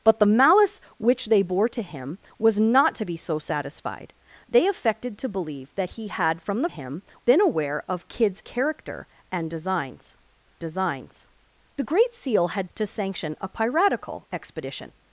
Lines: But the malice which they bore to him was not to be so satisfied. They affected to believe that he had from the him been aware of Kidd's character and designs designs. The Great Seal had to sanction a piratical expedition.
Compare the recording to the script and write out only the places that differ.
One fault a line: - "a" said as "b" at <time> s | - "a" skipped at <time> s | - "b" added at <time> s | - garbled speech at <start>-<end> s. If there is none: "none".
none